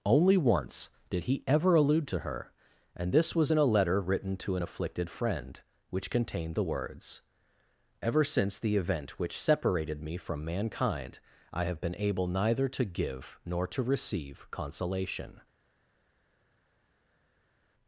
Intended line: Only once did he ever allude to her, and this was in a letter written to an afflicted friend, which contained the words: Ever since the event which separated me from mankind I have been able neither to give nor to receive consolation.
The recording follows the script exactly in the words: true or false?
true